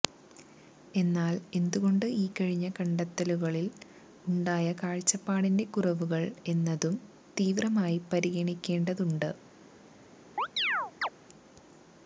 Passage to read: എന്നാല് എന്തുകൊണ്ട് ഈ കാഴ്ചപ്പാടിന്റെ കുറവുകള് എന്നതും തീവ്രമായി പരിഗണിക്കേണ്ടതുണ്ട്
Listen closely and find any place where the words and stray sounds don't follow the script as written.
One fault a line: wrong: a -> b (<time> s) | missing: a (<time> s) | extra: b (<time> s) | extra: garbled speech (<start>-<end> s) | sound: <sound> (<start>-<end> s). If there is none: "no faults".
extra: കഴിഞ്ഞ കണ്ടെത്തലുകളില് ഉണ്ടായ (2.3 s)
sound: chirp (10.4-11.1 s)